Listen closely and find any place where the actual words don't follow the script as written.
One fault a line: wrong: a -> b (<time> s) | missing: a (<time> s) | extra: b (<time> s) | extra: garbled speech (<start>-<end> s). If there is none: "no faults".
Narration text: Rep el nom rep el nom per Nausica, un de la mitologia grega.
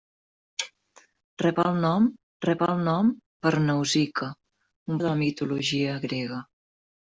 no faults